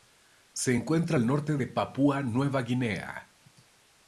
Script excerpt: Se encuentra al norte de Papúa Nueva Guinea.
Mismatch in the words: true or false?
false